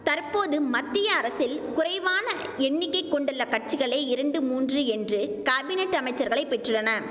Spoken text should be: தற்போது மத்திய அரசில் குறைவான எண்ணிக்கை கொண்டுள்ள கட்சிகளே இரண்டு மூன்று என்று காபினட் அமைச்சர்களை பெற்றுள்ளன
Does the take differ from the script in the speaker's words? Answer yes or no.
no